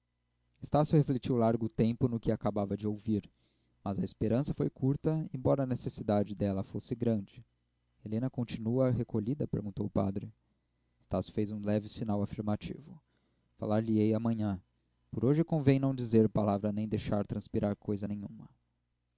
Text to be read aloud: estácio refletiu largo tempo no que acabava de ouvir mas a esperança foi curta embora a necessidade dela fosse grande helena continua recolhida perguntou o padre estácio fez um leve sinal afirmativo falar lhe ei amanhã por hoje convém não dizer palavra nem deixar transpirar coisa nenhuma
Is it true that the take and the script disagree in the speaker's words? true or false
false